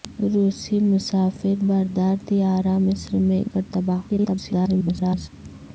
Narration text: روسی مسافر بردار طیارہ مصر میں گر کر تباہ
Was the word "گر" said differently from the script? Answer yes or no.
yes